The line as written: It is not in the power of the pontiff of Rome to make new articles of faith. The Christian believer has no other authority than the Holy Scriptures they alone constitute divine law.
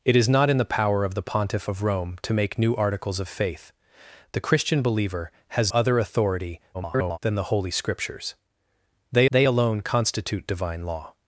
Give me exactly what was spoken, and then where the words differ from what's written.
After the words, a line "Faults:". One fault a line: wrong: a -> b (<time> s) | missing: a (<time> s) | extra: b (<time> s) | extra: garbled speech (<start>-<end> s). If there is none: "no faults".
It is not in the power of the pontiff of Rome to make new articles of faith. The Christian believer has other authority [garbled] than the Holy Scriptures they they alone constitute divine law.
Faults:
missing: no (5.7 s)
extra: garbled speech (6.7-7.2 s)
extra: they (9.3 s)